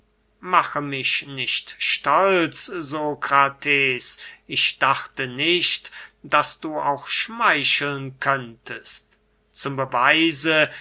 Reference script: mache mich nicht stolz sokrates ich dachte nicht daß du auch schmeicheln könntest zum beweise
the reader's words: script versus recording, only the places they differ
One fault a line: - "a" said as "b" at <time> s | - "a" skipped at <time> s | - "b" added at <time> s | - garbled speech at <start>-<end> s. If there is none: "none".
none